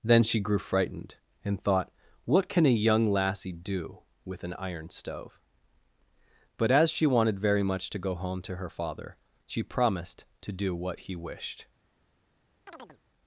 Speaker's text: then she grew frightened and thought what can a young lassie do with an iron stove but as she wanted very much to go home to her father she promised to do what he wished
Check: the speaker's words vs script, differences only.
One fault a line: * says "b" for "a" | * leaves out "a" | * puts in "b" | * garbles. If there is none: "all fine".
all fine